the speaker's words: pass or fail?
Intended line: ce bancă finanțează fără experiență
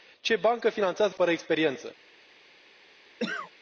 pass